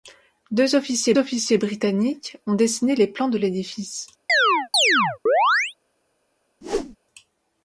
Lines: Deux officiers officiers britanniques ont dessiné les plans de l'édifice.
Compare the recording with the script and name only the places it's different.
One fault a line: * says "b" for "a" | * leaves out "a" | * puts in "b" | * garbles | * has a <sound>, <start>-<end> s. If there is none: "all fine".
* has a chirp, 4.3-5.7 s
* has a whoosh, 6.6-7.0 s